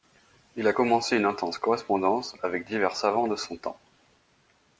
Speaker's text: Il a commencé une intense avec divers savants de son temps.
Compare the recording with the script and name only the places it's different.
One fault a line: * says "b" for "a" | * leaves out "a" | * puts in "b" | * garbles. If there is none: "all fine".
* puts in "correspondance"